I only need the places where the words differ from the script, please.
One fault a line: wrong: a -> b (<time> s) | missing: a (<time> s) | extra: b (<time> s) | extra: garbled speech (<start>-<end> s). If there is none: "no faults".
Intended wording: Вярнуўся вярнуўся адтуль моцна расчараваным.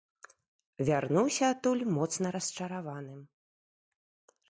missing: вярнуўся (1.4 s)